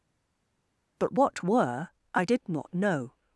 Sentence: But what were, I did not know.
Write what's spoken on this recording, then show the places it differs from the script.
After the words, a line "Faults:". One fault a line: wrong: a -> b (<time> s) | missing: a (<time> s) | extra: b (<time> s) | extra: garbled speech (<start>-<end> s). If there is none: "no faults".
But what were, I did not know.
Faults:
no faults